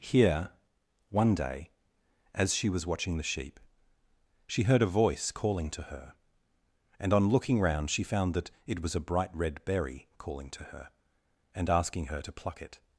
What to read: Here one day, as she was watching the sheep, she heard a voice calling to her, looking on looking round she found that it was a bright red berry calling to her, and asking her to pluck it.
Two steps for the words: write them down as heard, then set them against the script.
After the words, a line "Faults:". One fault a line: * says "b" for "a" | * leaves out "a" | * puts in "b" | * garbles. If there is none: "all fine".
Here one day, as she was watching the sheep, she heard a voice calling to her, and on looking round she found that it was a bright red berry calling to her, and asking her to pluck it.
Faults:
* says "and" for "looking"